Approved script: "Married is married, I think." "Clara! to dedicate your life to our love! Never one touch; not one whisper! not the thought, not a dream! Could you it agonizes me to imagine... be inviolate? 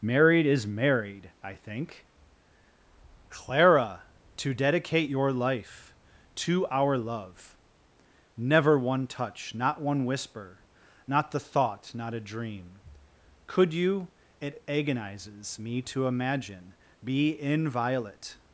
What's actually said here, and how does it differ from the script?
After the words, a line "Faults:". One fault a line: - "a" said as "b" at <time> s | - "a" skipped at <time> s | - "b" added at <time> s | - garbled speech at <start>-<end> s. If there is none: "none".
"Married is married, I think." "Clara! to dedicate your life to our love! Never one touch; not one whisper! not the thought, not a dream! Could you it agonizes me to imagine... be inviolate?
Faults:
none